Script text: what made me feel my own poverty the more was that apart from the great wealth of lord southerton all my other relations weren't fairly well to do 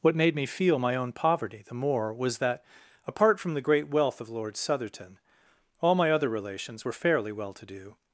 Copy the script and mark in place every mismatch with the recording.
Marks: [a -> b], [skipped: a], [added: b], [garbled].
what made me feel my own poverty the more was that apart from the great wealth of lord southerton all my other relations [weren't -> were] fairly well to do